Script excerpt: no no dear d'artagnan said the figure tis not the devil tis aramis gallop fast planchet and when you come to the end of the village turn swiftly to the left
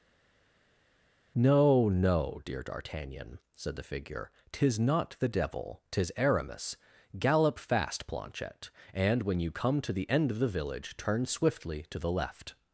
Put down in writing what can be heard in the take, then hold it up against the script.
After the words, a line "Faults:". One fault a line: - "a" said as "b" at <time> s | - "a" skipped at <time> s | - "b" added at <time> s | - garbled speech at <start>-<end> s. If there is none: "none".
no no dear d'artagnan said the figure tis not the devil tis aramis gallop fast planchet and when you come to the end of the village turn swiftly to the left
Faults:
none